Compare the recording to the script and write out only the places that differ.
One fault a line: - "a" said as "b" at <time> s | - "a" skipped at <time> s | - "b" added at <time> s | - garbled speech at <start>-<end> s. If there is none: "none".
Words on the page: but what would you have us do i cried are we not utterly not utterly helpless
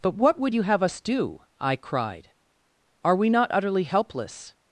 - "not utterly" skipped at 3.8 s